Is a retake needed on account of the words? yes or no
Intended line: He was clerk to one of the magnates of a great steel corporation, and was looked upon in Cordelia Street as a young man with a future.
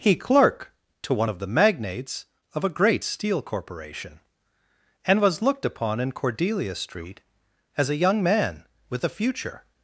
yes